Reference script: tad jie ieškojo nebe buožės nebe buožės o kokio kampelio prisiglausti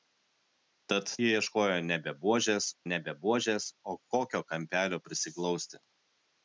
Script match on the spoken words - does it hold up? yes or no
yes